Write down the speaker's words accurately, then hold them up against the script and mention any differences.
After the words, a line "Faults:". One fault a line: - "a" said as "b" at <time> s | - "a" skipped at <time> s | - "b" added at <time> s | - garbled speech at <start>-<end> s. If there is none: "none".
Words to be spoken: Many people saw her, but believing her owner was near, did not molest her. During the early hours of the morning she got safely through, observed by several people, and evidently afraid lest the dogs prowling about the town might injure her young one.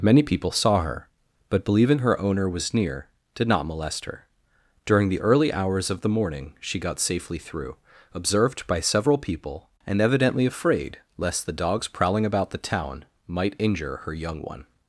Many people saw her, but believing her owner was near, did not molest her. During the early hours of the morning she got safely through, observed by several people, and evidently afraid lest the dogs prowling about the town might injure her young one.
Faults:
none